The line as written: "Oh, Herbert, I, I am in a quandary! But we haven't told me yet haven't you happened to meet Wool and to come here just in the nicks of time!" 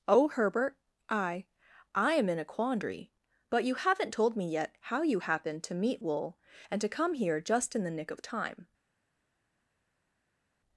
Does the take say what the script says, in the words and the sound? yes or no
no